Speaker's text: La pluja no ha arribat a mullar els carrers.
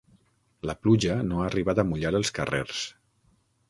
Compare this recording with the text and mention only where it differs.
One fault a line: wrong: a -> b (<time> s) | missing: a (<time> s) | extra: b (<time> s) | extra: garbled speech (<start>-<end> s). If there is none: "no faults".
no faults